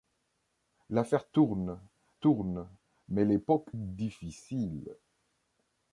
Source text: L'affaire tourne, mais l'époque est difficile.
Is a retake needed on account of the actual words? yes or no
yes